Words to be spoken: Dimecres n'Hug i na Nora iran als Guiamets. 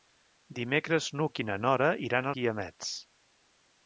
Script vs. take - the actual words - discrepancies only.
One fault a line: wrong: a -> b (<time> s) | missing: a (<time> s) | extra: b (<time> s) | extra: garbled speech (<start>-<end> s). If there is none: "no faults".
missing: als (2.3 s)